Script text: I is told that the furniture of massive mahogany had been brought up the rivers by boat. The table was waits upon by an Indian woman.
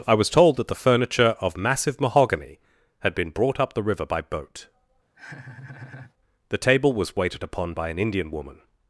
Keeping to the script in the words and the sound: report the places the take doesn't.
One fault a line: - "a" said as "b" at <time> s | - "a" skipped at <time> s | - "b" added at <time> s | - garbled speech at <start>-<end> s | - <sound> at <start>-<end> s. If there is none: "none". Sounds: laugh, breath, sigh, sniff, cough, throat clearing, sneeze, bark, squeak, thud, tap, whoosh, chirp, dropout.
- "is" said as "was" at 0.1 s
- "rivers" said as "river" at 3.8 s
- laugh at 5.1-6.1 s
- "waits" said as "waited" at 7.2 s